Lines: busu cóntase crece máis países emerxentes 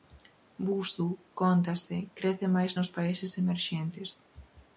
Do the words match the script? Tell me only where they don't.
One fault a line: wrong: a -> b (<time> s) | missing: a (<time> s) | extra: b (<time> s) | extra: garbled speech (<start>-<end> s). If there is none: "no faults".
extra: nos (2.8 s)